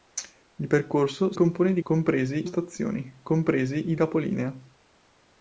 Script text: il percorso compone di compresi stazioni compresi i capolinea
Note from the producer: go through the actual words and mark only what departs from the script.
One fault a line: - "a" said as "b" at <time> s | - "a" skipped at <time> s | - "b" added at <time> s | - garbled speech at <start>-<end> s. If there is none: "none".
none